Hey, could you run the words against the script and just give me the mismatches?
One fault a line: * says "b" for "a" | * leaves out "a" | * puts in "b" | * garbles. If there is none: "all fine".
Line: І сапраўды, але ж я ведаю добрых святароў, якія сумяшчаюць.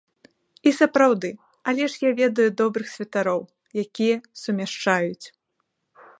all fine